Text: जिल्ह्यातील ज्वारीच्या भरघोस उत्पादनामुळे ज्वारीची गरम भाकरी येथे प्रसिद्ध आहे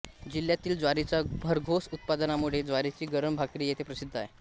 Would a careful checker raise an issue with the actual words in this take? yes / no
no